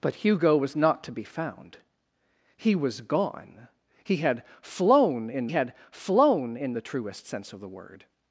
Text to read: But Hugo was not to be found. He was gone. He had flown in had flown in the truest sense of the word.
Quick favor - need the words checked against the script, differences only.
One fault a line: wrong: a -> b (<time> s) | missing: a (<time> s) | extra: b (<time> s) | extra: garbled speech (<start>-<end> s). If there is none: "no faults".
no faults